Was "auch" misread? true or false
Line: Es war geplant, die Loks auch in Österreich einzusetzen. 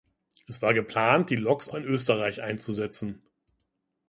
true